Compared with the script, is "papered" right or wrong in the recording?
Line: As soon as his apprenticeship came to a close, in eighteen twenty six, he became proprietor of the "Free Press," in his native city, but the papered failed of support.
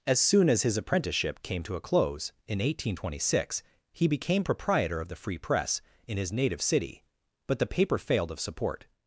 wrong